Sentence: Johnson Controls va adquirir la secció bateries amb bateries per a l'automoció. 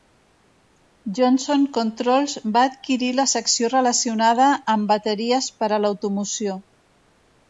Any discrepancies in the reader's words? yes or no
yes